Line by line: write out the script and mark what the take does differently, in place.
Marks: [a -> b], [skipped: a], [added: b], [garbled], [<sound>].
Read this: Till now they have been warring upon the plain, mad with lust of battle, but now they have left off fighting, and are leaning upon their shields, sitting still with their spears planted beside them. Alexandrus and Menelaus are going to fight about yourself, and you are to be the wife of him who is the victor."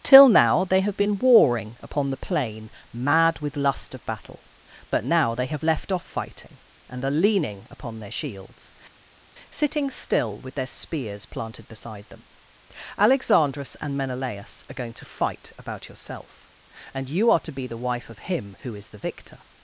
Till now they have been warring upon the plain, mad with lust of battle, but now they have left off fighting, and are leaning upon their shields, sitting still with their spears planted beside them. Alexandrus and Menelaus are going to fight about yourself, and you are to be the wife of him who is the victor."